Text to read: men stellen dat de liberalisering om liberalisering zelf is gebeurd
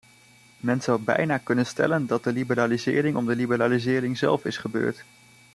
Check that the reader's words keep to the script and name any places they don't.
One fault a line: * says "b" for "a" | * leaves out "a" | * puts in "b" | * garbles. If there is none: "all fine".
* puts in "zou bijna kunnen"
* puts in "de"